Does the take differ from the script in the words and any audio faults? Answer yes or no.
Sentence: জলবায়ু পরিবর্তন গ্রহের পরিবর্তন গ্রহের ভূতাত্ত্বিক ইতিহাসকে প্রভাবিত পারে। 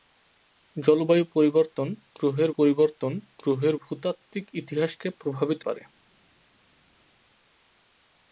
no